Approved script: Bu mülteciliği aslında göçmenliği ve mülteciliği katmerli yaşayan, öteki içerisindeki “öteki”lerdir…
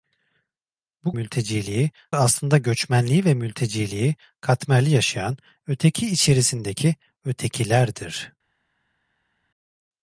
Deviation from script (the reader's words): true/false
false